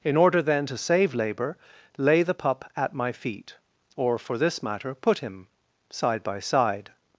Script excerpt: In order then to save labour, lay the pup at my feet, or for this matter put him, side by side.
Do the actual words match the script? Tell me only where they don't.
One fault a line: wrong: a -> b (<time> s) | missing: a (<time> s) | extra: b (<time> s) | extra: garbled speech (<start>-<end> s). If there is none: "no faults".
no faults